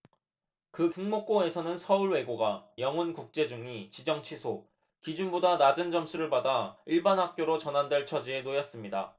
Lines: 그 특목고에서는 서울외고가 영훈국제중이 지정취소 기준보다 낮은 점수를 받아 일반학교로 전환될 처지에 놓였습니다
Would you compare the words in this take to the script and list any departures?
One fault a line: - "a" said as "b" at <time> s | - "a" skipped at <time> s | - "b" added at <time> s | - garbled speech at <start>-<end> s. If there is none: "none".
none